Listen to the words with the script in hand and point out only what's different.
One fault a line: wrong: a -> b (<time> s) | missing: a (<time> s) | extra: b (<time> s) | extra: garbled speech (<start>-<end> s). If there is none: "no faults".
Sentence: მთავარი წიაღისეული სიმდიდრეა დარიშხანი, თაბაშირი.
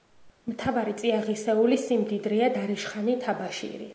no faults